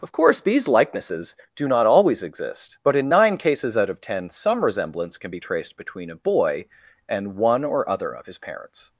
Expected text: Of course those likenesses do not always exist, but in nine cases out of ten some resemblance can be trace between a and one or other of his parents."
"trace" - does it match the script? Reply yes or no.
no